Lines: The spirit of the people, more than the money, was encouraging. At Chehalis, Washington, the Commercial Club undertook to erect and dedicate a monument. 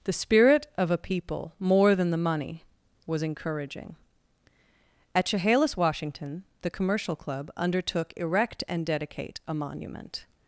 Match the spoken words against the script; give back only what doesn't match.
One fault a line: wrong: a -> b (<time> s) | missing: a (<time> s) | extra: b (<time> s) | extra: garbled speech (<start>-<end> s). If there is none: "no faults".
wrong: the -> a (0.9 s)
missing: to (8.1 s)